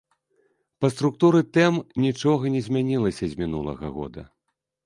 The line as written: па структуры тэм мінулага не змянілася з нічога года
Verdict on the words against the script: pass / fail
fail